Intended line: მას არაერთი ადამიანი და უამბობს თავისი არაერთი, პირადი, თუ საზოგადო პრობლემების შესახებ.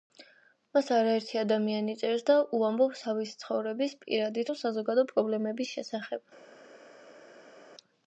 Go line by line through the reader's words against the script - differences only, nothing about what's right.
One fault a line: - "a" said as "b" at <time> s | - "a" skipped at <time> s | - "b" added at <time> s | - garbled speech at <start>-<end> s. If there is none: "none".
- "წერს" added at 2.0 s
- "არაერთი" said as "ცხოვრების" at 3.4 s